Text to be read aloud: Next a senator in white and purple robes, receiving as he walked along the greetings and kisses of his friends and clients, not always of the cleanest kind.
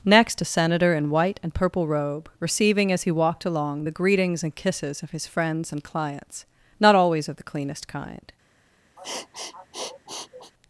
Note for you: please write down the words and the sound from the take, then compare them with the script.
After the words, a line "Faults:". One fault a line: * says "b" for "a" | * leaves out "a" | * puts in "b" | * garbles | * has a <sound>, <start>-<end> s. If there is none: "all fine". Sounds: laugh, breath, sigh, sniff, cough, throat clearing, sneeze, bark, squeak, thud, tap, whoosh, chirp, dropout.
Next a senator in white and purple robe, receiving as he walked along the greetings and kisses of his friends and clients, not always of the cleanest kind.
Faults:
* says "robe" for "robes"
* has a sniff, 9.0-10.5 s